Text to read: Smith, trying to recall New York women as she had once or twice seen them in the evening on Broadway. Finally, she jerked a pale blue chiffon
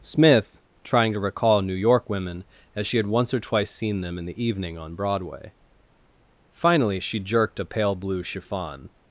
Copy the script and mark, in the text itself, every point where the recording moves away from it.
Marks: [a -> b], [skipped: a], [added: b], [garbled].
Smith, trying to recall New York women as she had once or twice seen them in the evening on Broadway. Finally, she jerked a pale blue chiffon